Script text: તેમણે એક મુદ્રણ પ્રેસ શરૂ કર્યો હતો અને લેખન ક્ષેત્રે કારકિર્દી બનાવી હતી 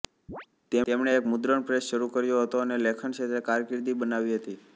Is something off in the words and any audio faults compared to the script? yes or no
yes